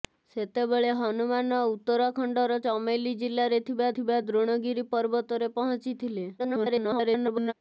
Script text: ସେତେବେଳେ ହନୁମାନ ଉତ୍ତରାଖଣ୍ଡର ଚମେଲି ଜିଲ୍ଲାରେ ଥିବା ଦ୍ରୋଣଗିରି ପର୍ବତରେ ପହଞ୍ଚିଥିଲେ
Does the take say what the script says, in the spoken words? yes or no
no